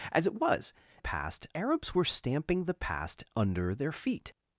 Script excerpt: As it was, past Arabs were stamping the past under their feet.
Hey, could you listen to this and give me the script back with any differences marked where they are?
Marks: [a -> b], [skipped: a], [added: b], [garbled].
As it was, past Arabs were stamping the past under their feet.